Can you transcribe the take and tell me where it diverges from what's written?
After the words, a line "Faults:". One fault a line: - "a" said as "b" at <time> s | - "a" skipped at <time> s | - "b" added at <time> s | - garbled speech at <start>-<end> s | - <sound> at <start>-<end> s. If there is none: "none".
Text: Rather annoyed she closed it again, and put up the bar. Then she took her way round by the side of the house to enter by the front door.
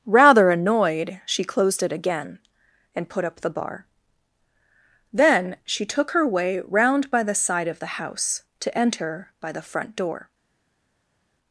Rather annoyed she closed it again, and put up the bar. Then she took her way round by the side of the house to enter by the front door.
Faults:
none